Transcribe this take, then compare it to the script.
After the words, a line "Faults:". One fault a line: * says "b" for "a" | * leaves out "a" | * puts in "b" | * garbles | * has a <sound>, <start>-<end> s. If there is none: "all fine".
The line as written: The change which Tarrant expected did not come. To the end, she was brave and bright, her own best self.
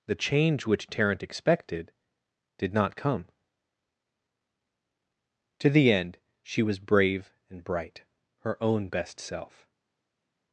The change which Tarrant expected did not come. To the end, she was brave and bright, her own best self.
Faults:
all fine